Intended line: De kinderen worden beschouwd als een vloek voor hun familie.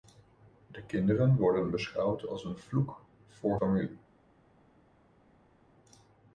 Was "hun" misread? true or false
true